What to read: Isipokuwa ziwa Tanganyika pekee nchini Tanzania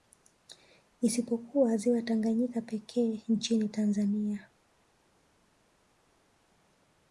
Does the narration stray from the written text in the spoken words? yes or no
no